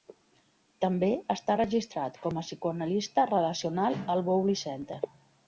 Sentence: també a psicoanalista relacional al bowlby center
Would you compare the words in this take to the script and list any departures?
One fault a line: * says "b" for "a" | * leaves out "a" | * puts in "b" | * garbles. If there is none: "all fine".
* puts in "està registrat com"